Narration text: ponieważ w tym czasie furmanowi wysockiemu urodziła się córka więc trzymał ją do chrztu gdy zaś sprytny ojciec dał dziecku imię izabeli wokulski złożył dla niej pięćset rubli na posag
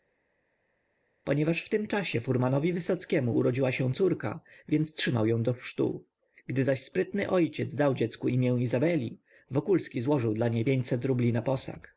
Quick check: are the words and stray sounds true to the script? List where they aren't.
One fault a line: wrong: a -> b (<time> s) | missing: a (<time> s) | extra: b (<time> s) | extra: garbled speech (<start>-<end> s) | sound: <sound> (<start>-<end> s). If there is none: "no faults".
no faults